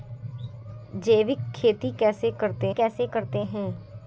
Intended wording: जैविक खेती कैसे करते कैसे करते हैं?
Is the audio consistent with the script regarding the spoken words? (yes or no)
yes